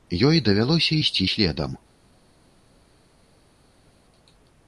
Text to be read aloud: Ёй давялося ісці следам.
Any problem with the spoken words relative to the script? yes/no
no